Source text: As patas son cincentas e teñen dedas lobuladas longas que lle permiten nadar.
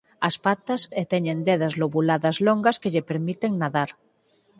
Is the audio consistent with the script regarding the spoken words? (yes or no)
no